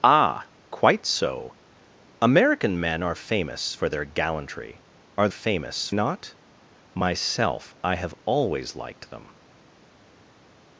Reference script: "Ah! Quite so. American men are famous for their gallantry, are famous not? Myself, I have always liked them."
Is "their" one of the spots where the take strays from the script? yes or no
no